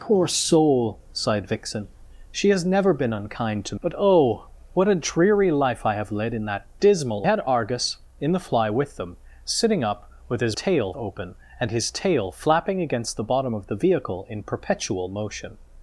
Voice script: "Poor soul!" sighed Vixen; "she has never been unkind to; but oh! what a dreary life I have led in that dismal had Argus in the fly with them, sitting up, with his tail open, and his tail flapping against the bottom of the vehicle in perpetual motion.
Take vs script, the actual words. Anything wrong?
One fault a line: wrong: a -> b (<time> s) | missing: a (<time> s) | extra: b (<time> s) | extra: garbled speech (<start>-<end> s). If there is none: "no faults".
no faults